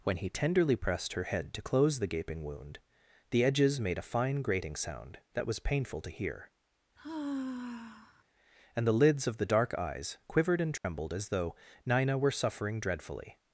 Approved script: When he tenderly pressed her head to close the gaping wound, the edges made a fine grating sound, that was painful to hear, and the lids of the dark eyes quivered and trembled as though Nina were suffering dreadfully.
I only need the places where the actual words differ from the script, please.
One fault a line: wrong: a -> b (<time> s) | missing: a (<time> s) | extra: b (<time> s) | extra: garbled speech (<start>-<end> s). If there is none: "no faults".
no faults